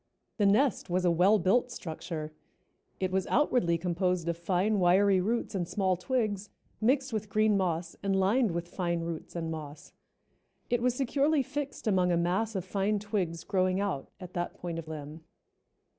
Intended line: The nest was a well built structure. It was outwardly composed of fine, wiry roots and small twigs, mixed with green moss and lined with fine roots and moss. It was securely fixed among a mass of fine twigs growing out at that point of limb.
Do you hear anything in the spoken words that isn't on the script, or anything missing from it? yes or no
no